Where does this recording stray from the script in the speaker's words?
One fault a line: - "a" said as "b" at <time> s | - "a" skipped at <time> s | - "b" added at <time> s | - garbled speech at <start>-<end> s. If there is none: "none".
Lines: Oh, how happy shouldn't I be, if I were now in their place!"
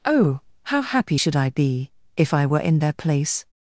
- "shouldn't" said as "should" at 1.1 s
- "now" skipped at 2.6 s